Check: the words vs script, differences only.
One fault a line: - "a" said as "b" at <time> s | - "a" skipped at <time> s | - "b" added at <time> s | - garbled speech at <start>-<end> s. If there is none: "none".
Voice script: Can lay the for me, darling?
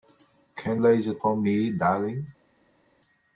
none